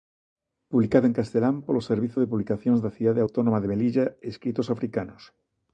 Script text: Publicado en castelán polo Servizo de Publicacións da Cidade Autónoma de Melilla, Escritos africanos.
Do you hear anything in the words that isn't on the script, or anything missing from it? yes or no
no